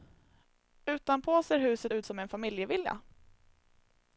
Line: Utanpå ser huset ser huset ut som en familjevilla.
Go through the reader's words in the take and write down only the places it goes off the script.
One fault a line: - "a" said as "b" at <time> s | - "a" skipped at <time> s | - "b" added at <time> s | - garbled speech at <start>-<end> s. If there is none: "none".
- "ser huset" skipped at 1.9 s